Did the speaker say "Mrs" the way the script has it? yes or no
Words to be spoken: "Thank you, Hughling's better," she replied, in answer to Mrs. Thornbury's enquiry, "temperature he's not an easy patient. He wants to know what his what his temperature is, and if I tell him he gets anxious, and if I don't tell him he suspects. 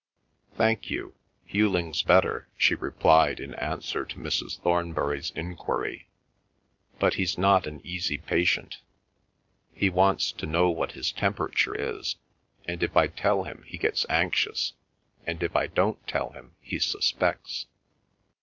yes